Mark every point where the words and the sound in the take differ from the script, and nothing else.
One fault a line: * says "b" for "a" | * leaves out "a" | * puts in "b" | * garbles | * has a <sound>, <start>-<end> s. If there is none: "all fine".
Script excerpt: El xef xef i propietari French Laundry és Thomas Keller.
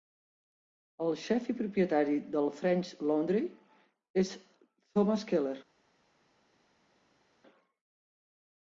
* leaves out "xef"
* puts in "del"